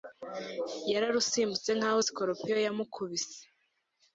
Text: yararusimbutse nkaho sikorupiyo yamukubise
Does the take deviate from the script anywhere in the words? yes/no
no